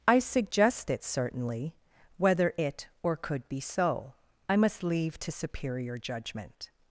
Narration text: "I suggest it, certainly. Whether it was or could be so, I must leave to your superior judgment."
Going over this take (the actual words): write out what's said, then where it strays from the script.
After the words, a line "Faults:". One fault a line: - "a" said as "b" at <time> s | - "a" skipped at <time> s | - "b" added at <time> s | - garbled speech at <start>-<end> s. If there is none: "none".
"I suggest it, certainly. Whether it or could be so, I must leave to superior judgment."
Faults:
- "was" skipped at 2.9 s
- "your" skipped at 5.3 s